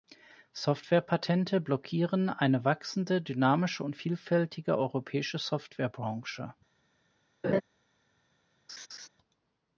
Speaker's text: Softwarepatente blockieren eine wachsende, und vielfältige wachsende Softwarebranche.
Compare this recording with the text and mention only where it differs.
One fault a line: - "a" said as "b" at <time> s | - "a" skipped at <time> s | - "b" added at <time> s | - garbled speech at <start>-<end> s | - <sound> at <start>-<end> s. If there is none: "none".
- "dynamische" added at 3.2 s
- "wachsende" said as "europäische" at 4.8 s
- laugh at 7.4-7.6 s
- laugh at 8.7-9.1 s